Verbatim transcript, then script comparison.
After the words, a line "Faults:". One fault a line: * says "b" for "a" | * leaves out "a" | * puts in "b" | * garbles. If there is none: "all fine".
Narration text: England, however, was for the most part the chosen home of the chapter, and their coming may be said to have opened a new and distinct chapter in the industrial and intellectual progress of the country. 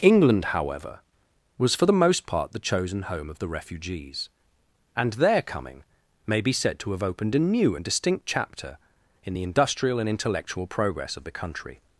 England, however, was for the most part the chosen home of the refugees, and their coming may be said to have opened a new and distinct chapter in the industrial and intellectual progress of the country.
Faults:
* says "refugees" for "chapter"